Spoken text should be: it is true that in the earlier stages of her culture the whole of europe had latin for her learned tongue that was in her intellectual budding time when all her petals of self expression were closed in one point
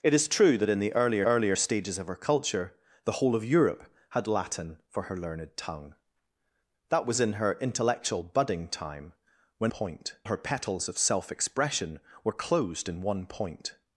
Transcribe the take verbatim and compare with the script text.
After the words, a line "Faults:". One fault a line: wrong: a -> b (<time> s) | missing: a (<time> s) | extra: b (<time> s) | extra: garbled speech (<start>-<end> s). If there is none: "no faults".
it is true that in the earlier earlier stages of her culture the whole of europe had latin for her learned tongue that was in her intellectual budding time when point her petals of self expression were closed in one point
Faults:
extra: earlier (1.2 s)
wrong: all -> point (9.7 s)